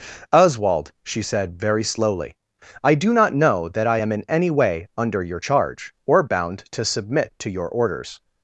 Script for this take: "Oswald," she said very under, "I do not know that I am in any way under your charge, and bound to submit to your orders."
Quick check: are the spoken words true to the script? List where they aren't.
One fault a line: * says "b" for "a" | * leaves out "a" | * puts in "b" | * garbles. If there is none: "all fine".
* says "slowly" for "under"
* says "or" for "and"